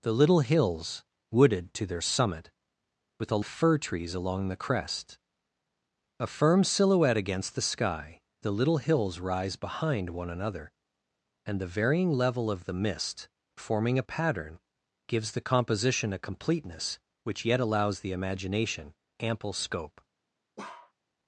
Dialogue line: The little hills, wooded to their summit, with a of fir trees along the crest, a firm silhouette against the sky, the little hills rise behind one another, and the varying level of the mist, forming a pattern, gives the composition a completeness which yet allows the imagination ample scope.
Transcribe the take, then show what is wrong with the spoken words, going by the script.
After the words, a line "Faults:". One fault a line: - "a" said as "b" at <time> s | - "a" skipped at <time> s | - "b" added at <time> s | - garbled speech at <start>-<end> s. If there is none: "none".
The little hills, wooded to their summit, with a of fir trees along the crest, a firm silhouette against the sky, the little hills rise behind one another, and the varying level of the mist, forming a pattern, gives the composition a completeness which yet allows the imagination ample scope.
Faults:
none